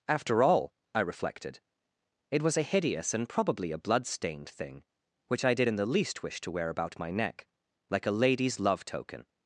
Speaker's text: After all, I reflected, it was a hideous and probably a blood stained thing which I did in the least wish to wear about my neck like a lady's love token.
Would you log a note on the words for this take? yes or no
no